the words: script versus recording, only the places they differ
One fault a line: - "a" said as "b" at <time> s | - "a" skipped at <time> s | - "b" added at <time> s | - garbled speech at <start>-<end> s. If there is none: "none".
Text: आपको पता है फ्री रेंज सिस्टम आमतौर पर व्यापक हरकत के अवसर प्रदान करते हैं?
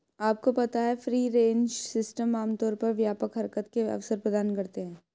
none